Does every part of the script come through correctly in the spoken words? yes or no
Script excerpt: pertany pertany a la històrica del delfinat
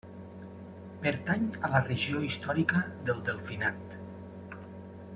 no